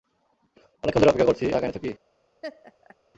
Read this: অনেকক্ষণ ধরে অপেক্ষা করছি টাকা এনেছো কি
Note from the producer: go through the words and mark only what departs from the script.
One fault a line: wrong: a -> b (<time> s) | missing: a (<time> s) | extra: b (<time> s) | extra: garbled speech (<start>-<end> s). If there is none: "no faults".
no faults